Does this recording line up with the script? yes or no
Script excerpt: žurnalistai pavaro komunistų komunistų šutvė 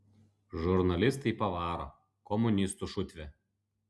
no